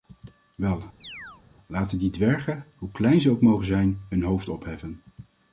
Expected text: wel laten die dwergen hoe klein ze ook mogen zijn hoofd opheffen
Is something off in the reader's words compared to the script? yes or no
yes